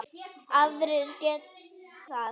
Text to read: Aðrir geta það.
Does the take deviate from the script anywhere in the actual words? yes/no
no